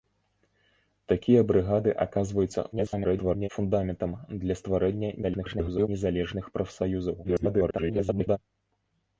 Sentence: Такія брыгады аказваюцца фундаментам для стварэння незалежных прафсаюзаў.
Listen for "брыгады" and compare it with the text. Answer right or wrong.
right